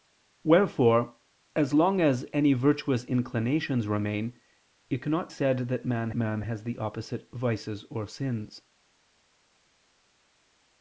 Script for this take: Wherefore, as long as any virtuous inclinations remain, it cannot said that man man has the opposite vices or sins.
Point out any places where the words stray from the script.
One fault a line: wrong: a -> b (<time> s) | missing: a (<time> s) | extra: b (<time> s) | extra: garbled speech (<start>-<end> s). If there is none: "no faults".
no faults